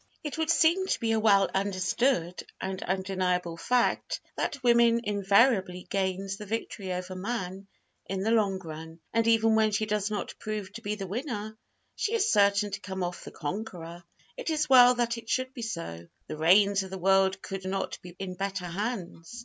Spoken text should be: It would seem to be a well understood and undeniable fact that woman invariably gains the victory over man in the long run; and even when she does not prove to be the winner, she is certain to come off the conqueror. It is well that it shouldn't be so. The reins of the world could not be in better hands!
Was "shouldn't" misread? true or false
true